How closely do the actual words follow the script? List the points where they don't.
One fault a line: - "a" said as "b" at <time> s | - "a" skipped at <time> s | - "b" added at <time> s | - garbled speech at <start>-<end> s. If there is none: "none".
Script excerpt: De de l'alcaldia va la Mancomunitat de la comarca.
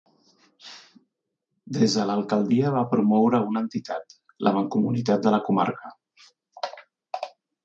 - "De" said as "Des" at 1.8 s
- "promoure una entitat" added at 2.9 s